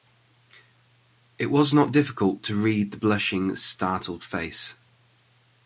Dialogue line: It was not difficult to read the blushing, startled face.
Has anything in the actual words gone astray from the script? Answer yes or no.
no